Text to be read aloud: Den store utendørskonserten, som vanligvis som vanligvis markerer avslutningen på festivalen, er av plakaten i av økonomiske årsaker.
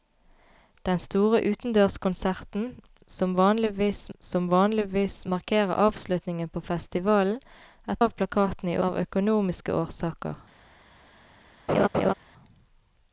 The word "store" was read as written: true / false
true